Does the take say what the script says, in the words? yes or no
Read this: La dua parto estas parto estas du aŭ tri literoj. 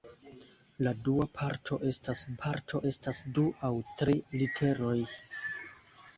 yes